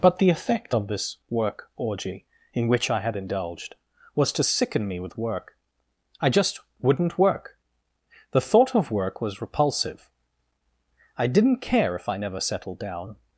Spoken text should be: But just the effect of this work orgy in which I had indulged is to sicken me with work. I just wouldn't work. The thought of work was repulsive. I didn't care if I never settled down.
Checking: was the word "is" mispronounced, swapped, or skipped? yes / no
yes